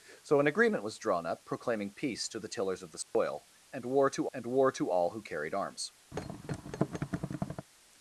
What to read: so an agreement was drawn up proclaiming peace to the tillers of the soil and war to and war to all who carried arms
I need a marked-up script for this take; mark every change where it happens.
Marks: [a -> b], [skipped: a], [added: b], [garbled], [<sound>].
so an agreement was drawn up proclaiming peace to the tillers of the soil [dropout] and war to and war to all who carried arms [thud]